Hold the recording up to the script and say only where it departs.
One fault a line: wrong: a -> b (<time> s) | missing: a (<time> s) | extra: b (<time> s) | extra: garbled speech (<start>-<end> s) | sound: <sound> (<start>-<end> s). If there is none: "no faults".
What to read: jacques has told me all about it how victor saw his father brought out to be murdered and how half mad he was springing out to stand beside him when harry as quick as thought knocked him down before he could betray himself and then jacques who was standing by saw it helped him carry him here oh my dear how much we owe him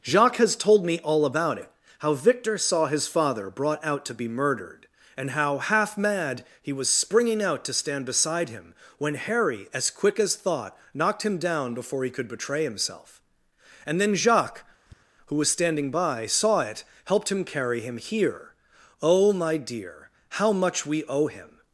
sound: tap (14.9-15.0 s)